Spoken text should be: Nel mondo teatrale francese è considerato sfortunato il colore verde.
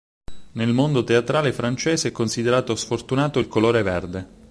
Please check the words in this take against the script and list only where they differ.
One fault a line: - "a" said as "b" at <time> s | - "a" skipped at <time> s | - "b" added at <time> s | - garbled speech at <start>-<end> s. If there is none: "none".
none